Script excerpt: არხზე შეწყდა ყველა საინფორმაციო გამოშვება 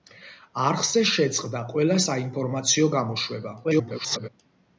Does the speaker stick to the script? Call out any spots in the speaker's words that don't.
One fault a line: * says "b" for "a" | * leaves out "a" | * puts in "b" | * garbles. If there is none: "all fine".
* garbles